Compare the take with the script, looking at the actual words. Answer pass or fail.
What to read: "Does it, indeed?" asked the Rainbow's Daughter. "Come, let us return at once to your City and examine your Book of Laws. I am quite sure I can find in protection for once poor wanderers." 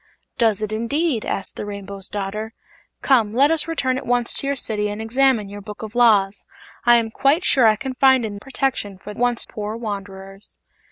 pass